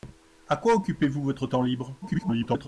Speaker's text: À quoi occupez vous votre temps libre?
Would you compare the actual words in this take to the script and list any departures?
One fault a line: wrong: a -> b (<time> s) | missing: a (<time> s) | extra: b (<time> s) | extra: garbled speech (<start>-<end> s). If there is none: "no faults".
extra: garbled speech (2.0-2.7 s)